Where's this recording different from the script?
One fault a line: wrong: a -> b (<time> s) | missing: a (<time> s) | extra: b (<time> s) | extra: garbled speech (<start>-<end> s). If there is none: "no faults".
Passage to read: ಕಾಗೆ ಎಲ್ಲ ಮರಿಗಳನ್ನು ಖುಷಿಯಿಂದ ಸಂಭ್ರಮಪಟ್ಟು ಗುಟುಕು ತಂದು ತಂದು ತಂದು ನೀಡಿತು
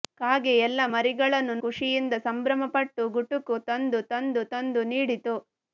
no faults